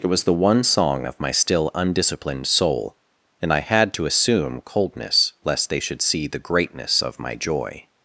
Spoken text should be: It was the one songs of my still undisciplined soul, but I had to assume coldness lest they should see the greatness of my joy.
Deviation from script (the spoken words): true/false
true